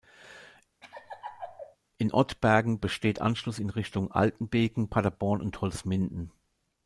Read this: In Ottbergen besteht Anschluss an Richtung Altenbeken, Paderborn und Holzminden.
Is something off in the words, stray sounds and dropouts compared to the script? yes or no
yes